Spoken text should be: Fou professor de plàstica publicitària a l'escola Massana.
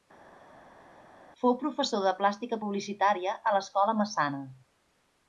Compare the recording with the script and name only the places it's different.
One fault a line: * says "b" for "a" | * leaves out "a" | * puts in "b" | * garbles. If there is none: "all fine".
all fine